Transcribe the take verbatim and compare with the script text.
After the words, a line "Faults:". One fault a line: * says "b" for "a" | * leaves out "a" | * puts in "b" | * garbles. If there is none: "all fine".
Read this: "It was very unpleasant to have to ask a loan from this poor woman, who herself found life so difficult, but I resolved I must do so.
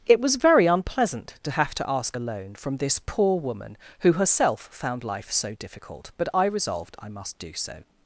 "It was very unpleasant to have to ask a loan from this poor woman, who herself found life so difficult, but I resolved I must do so.
Faults:
all fine